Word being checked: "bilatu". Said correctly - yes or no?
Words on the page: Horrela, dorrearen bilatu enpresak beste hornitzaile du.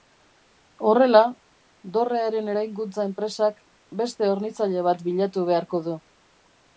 no